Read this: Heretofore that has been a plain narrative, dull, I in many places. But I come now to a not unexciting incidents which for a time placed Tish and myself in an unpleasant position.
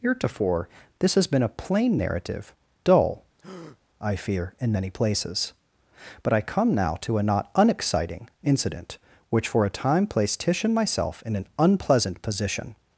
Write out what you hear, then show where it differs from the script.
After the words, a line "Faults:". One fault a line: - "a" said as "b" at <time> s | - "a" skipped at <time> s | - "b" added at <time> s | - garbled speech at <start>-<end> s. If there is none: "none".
Heretofore this has been a plain narrative, dull, I fear, in many places. But I come now to a not unexciting incident which for a time placed Tish and myself in an unpleasant position.
Faults:
- "that" said as "this" at 1.0 s
- "fear" added at 4.2 s
- "incidents" said as "incident" at 8.4 s